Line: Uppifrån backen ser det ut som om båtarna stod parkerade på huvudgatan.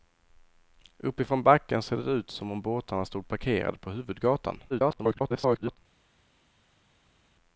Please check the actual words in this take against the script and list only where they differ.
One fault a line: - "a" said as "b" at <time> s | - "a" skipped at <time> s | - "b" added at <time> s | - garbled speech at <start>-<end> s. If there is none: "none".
- garbled speech at 4.7-5.8 s